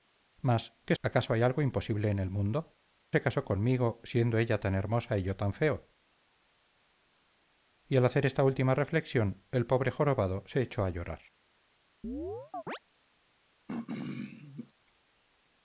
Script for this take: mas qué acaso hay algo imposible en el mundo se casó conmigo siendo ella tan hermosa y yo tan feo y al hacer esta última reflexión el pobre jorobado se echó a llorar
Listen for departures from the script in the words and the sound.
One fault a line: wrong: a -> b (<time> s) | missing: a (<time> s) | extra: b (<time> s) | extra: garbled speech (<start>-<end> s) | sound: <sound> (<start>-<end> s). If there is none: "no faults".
sound: chirp (12.0-12.8 s)
sound: throat clearing (13.7-14.7 s)